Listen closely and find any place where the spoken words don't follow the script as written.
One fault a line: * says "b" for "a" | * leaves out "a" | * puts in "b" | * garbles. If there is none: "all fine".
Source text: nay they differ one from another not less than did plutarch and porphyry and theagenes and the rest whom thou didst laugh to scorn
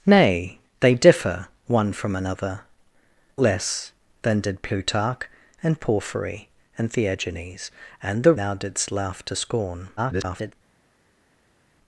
* leaves out "not"
* leaves out "rest whom"
* garbles